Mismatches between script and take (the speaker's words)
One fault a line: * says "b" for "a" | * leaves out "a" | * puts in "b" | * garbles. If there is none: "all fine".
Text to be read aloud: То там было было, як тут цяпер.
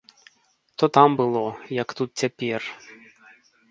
* leaves out "было"